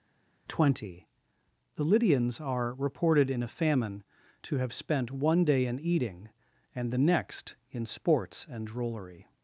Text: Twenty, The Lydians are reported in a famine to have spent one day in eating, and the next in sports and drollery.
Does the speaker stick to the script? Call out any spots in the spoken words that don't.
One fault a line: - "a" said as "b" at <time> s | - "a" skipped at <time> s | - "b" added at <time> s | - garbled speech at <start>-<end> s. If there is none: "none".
none